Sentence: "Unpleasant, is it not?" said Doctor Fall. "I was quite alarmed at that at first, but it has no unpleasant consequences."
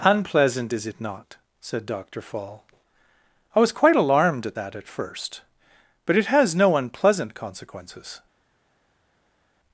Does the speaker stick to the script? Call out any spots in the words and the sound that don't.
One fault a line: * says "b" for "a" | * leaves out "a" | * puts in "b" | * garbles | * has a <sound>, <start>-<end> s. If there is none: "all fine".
all fine